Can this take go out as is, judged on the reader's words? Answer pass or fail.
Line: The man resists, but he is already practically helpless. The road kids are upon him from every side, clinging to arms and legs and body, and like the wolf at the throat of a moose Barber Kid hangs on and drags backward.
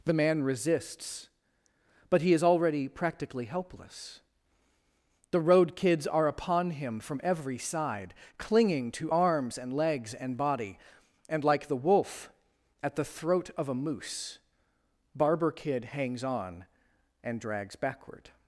pass